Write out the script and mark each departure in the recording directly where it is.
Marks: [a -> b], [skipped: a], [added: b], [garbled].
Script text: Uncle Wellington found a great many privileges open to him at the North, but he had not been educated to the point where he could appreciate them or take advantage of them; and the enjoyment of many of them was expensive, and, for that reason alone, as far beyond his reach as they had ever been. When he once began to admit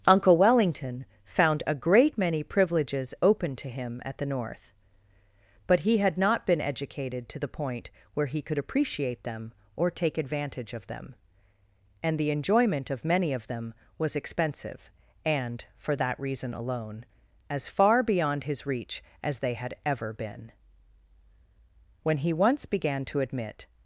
Uncle Wellington found a great many privileges open to him at the North, but he had not been educated to the point where he could appreciate them or take advantage of them; and the enjoyment of many of them was expensive, and, for that reason alone, as far beyond his reach as they had ever been. When he once began to admit